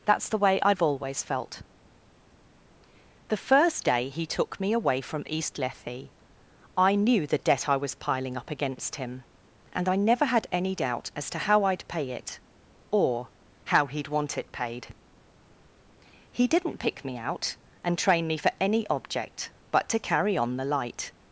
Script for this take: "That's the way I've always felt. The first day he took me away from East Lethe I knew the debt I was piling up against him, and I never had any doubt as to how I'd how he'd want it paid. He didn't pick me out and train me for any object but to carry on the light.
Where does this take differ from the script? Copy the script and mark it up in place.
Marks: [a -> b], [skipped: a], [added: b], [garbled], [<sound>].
"That's the way I've always felt. The first day he took me away from East Lethe I knew the debt I was piling up against him, and I never had any doubt as to how I'd [added: pay it or] how he'd want it paid. He didn't pick me out and train me for any object but to carry on the light.